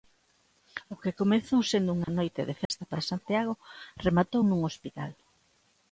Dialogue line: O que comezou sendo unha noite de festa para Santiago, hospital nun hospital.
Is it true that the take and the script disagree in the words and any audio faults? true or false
true